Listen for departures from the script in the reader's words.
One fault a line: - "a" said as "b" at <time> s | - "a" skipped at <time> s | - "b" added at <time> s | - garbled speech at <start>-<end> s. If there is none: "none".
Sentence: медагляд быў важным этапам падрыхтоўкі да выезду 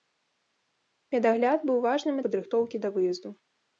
- "этапам" skipped at 2.1 s